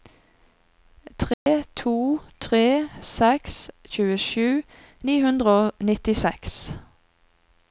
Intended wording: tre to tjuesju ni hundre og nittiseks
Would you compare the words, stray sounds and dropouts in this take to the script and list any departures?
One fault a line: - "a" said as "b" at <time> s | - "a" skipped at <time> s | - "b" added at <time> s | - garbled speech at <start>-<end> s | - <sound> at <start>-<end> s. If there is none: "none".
- dropout at 1.3-1.5 s
- "tre seks" added at 2.5 s